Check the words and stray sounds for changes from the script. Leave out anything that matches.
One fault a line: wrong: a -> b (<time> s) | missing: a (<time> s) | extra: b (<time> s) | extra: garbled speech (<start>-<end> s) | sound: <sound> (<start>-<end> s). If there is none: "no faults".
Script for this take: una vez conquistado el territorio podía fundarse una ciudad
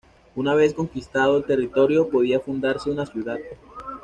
no faults